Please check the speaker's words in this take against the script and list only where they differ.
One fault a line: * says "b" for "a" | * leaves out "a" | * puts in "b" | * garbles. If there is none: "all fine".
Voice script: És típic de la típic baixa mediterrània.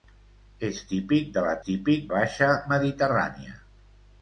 all fine